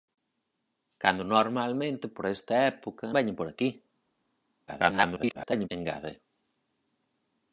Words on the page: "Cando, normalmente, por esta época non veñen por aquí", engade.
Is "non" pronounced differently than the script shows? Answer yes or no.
yes